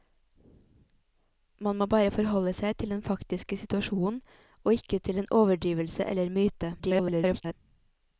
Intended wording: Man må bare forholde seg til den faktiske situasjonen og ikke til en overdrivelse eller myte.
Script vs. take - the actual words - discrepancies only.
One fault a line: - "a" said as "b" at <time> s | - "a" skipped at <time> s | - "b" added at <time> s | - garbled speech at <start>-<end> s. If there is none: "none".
- garbled speech at 6.8-7.5 s